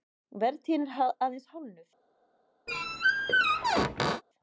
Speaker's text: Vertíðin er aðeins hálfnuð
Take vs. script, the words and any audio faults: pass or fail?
fail